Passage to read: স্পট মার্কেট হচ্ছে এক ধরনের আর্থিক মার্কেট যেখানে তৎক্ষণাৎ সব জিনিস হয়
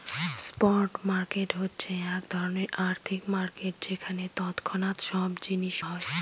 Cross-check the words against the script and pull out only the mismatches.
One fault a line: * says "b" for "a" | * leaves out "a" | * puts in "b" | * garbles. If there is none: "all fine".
all fine